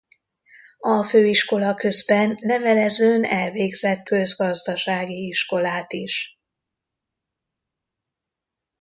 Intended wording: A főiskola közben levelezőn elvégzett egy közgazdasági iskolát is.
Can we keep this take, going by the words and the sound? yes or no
no